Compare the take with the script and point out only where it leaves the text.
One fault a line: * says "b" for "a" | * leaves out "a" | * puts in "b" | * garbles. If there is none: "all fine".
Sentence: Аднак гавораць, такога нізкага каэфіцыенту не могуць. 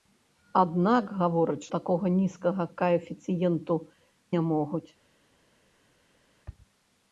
all fine